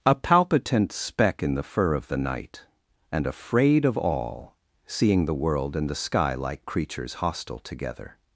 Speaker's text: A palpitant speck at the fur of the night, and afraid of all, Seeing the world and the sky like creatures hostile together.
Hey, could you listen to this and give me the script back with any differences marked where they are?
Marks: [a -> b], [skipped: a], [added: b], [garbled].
A palpitant speck [at -> in] the fur of the night, and afraid of all, Seeing the world and the sky like creatures hostile together.